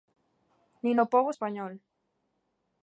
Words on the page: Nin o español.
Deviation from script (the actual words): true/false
true